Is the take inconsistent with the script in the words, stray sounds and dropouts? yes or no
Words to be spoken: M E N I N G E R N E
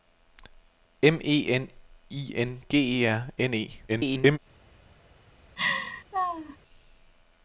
yes